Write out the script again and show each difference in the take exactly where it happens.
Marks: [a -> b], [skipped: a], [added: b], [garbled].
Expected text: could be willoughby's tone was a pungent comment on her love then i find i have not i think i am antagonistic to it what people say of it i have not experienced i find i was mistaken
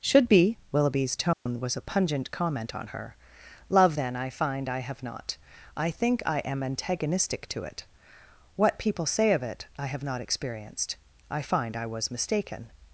[could -> should] be willoughby's tone was a pungent comment on her love then i find i have not i think i am antagonistic to it what people say of it i have not experienced i find i was mistaken